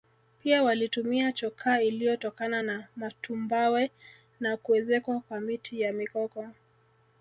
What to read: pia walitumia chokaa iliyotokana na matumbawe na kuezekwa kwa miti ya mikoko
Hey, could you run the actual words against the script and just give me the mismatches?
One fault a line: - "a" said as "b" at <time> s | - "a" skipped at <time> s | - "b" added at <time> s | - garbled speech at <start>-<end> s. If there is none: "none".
none